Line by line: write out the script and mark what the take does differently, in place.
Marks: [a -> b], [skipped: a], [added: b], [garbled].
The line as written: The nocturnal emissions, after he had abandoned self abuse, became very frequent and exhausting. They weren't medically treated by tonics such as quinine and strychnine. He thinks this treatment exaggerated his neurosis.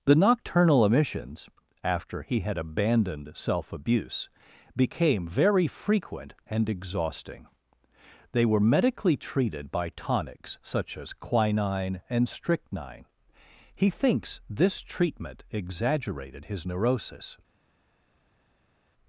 The nocturnal emissions, after he had abandoned self abuse, became very frequent and exhausting. They [weren't -> were] medically treated by tonics such as quinine and strychnine. He thinks this treatment exaggerated his neurosis.